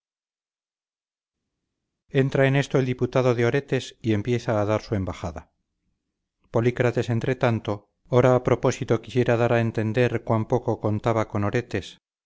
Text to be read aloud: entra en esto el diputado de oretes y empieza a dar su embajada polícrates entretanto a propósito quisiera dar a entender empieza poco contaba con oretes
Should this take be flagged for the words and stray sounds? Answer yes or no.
yes